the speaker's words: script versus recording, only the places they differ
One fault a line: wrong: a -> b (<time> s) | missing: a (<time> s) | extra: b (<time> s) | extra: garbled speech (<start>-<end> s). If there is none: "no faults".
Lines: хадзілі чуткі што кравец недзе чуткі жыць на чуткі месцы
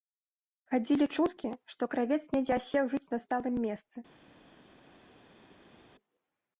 wrong: чуткі -> асеў (2.6 s)
wrong: чуткі -> сталым (3.3 s)